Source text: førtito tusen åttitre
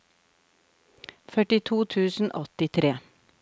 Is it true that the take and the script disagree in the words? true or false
false